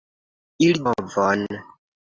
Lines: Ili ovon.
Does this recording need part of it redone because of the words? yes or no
no